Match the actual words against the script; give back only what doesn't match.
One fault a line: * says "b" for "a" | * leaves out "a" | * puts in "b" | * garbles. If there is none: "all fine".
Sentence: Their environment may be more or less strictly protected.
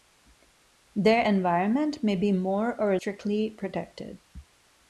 * leaves out "less"